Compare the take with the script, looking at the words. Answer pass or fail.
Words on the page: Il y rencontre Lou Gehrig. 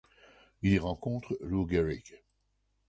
pass